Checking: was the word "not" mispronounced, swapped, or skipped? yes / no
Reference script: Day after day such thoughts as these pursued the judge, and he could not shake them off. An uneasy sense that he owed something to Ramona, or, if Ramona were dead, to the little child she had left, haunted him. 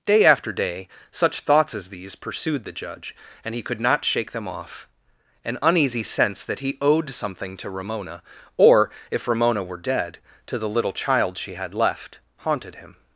no